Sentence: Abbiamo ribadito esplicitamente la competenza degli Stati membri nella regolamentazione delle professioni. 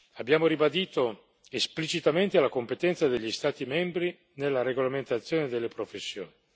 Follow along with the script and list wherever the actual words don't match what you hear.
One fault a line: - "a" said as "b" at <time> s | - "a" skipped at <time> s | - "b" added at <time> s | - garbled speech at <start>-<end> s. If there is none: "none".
none